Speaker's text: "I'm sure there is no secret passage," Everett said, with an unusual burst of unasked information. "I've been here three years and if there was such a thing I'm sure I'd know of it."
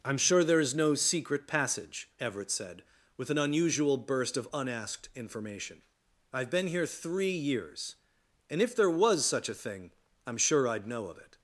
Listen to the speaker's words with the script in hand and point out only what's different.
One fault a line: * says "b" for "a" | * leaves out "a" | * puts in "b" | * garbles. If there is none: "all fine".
all fine